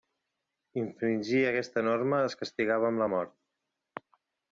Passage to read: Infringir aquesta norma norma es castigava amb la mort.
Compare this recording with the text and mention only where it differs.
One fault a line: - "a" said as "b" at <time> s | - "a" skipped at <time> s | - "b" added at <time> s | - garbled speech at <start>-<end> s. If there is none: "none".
- "norma" skipped at 2.2 s